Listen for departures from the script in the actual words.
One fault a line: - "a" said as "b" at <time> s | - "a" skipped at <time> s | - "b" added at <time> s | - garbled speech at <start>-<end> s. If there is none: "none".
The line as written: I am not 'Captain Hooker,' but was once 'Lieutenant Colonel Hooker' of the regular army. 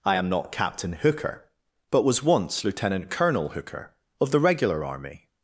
none